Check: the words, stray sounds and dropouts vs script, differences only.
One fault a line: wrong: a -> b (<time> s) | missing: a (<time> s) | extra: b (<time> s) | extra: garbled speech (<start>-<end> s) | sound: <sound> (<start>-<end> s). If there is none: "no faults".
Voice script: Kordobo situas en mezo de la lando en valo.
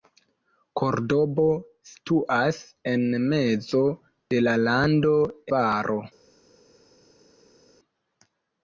missing: en (5.2 s)